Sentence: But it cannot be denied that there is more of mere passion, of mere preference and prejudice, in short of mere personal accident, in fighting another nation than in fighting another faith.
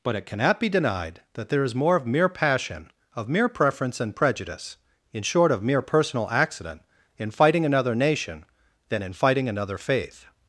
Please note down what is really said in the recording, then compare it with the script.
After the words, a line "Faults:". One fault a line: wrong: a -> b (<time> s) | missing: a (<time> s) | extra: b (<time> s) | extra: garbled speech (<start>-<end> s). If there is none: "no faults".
But it cannot be denied that there is more of mere passion, of mere preference and prejudice, in short of mere personal accident, in fighting another nation than in fighting another faith.
Faults:
no faults